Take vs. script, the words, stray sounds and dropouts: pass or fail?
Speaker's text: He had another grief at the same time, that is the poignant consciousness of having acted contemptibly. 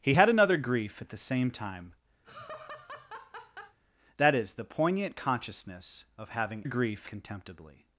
fail